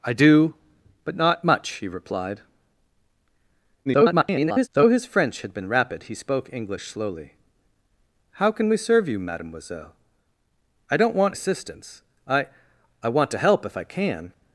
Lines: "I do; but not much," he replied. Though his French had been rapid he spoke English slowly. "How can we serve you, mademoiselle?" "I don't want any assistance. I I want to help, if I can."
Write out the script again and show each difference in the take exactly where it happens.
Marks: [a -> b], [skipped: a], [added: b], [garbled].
"I do; but not much," he replied. [garbled] Though his French had been rapid he spoke English slowly. "How can we serve you, mademoiselle?" "I don't want [skipped: any] assistance. I I want to help, if I can."